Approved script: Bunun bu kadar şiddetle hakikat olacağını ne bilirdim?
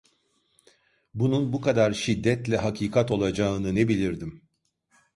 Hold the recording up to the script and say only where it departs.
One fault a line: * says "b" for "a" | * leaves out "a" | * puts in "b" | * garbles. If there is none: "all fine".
all fine